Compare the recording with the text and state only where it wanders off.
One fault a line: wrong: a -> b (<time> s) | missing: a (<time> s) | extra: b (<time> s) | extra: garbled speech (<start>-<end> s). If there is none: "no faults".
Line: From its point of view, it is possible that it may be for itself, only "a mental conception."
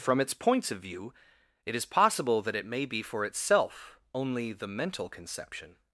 wrong: point -> points (0.3 s)
wrong: a -> the (4.5 s)